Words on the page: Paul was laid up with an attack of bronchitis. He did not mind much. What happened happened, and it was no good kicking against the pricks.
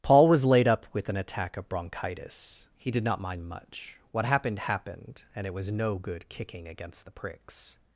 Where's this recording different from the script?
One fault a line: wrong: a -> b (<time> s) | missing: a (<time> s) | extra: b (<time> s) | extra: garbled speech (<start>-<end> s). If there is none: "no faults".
no faults